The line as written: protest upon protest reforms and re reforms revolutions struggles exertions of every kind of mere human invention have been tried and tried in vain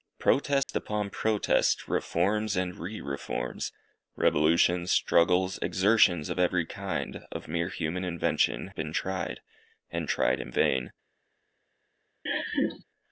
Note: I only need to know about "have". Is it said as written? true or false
false